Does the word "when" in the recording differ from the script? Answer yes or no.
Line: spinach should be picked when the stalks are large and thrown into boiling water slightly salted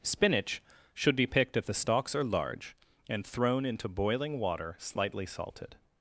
yes